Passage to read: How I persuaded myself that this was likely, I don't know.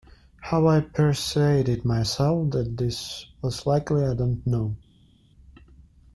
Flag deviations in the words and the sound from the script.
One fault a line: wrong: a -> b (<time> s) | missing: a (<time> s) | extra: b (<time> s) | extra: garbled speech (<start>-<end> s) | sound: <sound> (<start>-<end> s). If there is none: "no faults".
no faults